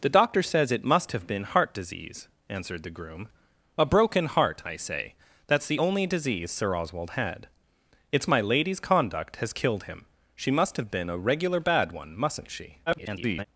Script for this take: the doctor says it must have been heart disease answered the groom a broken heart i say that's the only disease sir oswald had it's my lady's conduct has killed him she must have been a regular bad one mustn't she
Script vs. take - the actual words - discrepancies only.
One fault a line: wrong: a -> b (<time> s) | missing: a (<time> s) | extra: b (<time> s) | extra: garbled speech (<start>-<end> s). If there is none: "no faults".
extra: garbled speech (12.9-13.5 s)